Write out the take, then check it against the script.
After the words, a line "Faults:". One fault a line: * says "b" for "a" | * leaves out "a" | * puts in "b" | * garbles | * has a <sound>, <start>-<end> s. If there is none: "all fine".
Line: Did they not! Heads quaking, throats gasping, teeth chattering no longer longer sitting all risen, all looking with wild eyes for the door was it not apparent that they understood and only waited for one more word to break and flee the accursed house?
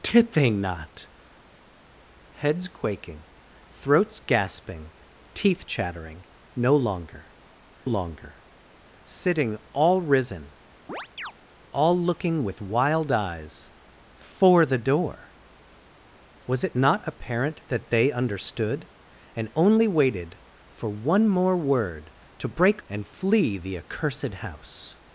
Did they not! Heads quaking, throats gasping, teeth chattering no longer longer sitting all risen, all looking with wild eyes for the door was it not apparent that they understood and only waited for one more word to break and flee the accursed house?
Faults:
* has a chirp, 10.9-11.3 s